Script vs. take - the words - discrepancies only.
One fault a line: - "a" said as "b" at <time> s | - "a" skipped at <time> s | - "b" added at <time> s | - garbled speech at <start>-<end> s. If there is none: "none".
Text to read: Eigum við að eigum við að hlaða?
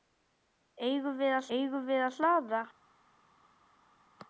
none